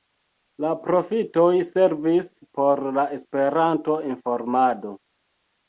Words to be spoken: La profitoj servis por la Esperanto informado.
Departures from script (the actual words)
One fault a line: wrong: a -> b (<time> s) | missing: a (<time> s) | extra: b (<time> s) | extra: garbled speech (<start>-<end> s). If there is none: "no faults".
no faults